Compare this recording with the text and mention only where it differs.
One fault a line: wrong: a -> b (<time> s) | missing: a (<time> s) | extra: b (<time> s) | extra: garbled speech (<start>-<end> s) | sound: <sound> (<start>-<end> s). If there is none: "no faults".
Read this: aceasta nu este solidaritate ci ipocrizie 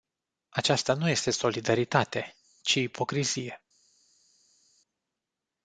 no faults